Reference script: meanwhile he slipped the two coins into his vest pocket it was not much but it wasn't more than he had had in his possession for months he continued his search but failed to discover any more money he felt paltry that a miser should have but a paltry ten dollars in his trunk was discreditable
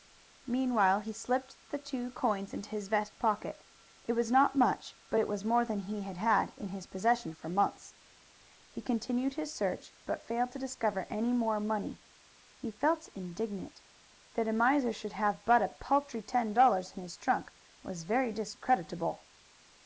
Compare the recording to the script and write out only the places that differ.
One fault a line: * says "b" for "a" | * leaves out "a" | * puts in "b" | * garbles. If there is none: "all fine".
* says "was" for "wasn't"
* says "indignant" for "paltry"
* puts in "very"